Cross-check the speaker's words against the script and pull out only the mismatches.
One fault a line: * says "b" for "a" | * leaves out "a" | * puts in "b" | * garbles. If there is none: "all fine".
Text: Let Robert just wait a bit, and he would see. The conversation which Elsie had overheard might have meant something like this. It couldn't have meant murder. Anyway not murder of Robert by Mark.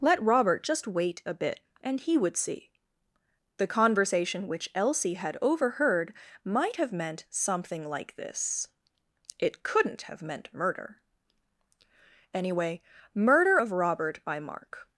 * leaves out "not"